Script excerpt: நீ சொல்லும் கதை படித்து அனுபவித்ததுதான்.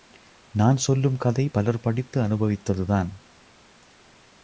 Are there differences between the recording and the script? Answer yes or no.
yes